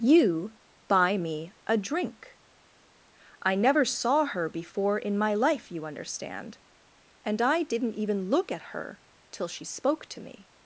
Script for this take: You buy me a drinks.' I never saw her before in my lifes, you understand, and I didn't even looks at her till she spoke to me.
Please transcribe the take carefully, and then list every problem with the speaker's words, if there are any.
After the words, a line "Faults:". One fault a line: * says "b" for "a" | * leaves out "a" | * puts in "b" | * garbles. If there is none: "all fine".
You buy me a drink.' I never saw her before in my life, you understand, and I didn't even look at her till she spoke to me.
Faults:
* says "drink" for "drinks"
* says "life" for "lifes"
* says "look" for "looks"